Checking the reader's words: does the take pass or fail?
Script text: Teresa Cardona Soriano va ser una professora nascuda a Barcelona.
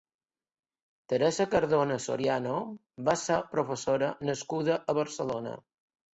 fail